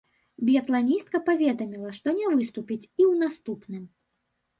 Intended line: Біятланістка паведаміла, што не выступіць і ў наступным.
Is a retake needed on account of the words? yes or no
no